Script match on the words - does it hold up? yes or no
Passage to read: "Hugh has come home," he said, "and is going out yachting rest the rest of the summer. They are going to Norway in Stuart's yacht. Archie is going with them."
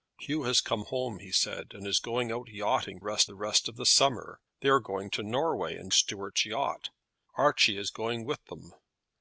yes